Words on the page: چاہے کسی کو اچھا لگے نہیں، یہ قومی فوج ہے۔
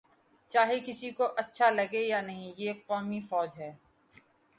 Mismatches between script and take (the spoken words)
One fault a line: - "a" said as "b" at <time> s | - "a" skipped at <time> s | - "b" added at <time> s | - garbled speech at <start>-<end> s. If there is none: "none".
- "یا" added at 2.1 s